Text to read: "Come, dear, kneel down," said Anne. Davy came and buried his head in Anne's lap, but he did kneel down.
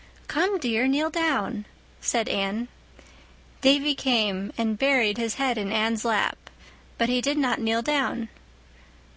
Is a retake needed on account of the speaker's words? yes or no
yes